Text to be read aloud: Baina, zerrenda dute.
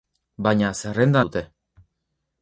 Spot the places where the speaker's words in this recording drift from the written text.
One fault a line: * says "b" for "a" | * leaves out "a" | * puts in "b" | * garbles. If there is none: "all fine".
all fine